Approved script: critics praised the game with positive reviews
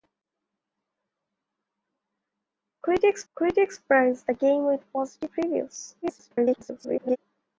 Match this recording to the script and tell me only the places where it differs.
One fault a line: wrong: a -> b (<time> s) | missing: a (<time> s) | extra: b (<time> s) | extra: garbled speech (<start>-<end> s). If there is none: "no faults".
extra: critics (3.3 s)
extra: garbled speech (6.0-7.2 s)